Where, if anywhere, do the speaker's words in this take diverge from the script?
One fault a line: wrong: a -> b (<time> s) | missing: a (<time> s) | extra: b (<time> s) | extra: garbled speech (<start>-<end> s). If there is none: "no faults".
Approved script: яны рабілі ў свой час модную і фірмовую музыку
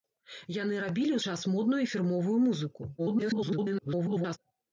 missing: свой (1.2 s)
extra: garbled speech (3.0-4.4 s)